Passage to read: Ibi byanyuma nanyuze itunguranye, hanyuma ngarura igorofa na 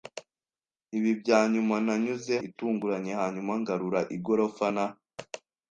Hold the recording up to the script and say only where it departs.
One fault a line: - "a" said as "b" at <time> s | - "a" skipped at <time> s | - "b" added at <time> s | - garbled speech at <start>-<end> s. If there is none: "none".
none